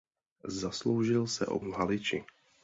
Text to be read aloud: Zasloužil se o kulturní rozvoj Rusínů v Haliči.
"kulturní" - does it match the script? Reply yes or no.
no